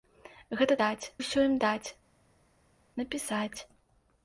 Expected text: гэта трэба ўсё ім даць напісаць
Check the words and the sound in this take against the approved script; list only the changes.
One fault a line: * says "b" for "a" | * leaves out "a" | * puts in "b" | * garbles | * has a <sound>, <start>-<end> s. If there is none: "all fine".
* says "даць" for "трэба"